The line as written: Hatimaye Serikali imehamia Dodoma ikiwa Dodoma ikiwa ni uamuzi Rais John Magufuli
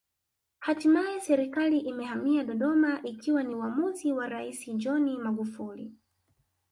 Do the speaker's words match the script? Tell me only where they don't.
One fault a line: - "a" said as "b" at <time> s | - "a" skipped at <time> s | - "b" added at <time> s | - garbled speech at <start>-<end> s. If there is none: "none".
- "Dodoma ikiwa" skipped at 3.4 s
- "wa" added at 4.1 s